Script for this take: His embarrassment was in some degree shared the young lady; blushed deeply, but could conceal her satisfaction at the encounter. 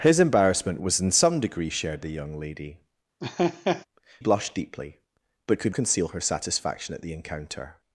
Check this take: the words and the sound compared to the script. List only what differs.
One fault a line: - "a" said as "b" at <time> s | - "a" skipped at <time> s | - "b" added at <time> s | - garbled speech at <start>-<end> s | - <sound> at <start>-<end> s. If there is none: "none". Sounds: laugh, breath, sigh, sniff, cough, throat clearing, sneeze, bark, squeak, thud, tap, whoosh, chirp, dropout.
- laugh at 3.2-3.9 s